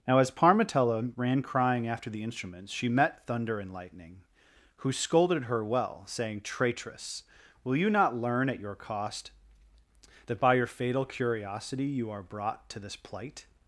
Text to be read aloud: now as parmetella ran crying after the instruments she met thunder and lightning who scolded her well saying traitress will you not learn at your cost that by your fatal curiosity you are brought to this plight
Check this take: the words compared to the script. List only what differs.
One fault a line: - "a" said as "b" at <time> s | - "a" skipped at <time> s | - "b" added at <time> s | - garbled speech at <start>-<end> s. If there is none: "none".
none